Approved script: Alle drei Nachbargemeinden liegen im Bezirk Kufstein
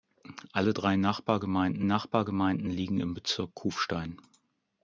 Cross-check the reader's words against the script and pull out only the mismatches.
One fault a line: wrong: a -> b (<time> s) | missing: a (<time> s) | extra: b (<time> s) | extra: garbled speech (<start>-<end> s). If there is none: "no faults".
extra: Nachbargemeinden (1.8 s)